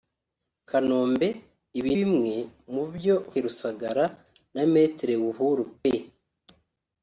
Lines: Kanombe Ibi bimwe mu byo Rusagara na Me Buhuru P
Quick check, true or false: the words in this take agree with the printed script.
true